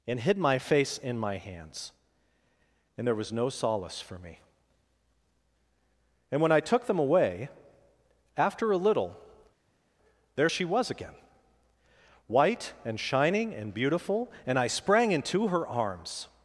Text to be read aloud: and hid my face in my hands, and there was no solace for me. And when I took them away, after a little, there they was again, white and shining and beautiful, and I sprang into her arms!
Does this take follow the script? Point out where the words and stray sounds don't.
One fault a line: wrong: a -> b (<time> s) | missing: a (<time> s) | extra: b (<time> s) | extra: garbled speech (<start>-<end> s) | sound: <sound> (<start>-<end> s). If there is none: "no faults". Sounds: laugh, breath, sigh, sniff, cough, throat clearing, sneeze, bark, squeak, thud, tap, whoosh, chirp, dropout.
wrong: they -> she (10.5 s)